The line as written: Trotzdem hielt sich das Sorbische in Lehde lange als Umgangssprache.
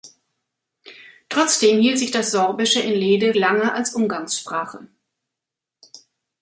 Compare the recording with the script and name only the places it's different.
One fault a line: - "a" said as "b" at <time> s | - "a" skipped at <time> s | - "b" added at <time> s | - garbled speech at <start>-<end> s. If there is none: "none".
none